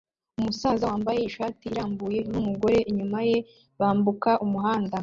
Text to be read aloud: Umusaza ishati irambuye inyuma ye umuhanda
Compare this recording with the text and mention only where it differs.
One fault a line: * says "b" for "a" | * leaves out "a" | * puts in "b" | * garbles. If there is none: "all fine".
* puts in "wambaye"
* puts in "numugore"
* puts in "bambuka"